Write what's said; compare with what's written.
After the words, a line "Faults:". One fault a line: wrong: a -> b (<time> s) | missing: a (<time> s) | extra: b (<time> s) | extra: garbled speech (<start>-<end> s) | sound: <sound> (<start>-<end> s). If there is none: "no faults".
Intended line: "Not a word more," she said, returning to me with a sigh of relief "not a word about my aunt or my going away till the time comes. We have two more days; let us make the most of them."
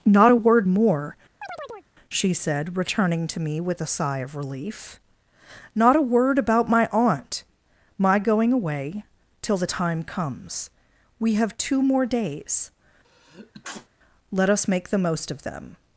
"Not a word more," she said, returning to me with a sigh of relief "not a word about my aunt my going away till the time comes. We have two more days; let us make the most of them."
Faults:
sound: chirp (1.4-1.9 s)
missing: or (7.4 s)
sound: sneeze (13.0-13.9 s)